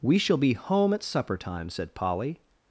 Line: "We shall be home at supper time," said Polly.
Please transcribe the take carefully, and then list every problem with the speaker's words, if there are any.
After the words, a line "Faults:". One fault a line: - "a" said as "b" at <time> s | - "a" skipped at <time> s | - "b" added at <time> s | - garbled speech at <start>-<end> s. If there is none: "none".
"We shall be home at supper time," said Polly.
Faults:
none